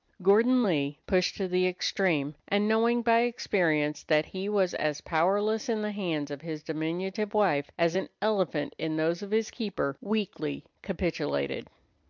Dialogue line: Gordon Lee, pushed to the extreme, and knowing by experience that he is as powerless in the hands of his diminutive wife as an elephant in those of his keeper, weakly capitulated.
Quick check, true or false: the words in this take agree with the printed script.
false